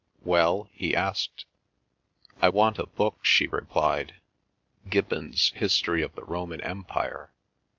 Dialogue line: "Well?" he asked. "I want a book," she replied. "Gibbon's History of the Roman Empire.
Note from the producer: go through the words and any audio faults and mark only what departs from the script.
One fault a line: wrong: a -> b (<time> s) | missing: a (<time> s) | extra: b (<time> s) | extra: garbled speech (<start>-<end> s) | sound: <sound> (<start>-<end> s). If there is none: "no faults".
no faults